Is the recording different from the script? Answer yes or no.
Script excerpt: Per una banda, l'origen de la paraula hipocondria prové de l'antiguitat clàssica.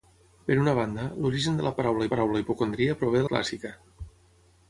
yes